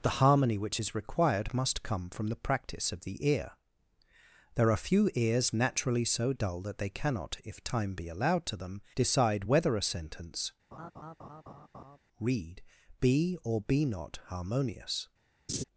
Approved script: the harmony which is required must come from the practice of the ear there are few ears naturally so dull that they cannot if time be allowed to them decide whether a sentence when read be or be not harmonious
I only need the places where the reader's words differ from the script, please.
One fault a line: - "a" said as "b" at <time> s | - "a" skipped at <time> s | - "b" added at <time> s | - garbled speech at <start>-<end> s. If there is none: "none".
- "when" skipped at 10.5 s